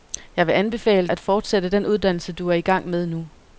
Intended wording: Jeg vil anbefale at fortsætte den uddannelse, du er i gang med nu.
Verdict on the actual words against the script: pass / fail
pass